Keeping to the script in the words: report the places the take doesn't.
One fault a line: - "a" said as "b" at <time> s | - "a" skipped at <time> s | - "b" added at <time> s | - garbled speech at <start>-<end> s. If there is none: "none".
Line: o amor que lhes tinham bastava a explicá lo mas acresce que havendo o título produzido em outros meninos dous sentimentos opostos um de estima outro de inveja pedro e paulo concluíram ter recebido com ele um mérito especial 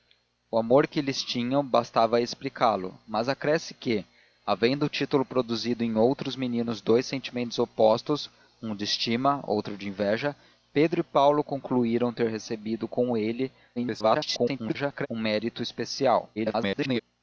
- garbled speech at 13.8-15.1 s
- garbled speech at 16.4-17.0 s